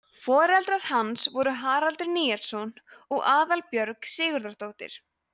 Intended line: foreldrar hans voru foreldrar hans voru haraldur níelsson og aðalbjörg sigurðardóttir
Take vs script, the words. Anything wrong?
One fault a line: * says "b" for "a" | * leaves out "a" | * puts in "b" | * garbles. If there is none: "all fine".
* leaves out "foreldrar hans voru"